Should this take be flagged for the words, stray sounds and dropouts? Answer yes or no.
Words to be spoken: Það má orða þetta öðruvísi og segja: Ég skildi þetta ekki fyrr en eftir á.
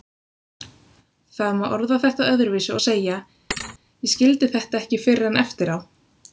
yes